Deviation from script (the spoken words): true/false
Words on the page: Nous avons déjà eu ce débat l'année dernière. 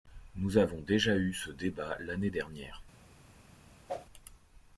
false